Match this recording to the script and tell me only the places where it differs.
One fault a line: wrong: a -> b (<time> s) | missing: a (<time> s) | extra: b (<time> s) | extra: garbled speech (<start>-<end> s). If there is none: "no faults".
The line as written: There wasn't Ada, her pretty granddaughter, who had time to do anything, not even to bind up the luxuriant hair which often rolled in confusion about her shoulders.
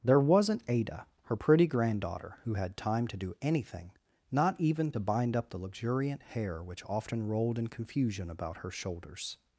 no faults